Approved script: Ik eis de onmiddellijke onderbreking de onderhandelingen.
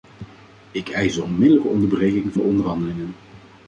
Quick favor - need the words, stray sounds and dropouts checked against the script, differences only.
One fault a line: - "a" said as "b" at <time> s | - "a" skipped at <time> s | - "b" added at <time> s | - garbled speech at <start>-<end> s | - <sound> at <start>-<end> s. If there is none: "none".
none